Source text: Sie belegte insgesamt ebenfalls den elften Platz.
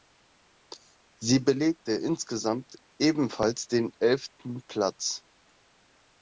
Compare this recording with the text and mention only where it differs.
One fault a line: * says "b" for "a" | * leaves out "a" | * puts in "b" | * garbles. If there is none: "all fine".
all fine